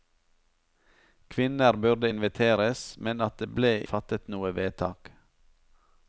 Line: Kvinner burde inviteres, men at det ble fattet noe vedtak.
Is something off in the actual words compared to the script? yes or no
no